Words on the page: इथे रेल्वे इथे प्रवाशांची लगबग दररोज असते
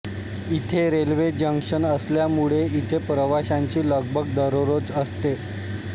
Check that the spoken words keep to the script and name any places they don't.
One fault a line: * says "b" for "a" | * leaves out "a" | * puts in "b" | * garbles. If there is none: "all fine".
* puts in "जंक्शन असल्यामुळे"